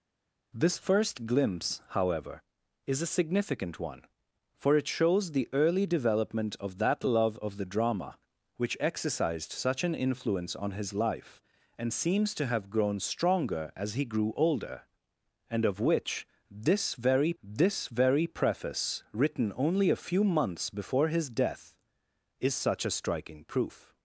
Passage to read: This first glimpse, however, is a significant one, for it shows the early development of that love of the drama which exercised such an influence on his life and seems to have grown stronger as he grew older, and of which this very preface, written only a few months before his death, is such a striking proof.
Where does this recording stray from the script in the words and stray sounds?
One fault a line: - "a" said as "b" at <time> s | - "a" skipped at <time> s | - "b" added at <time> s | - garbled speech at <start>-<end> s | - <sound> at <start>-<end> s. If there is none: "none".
- "this very" added at 17.4 s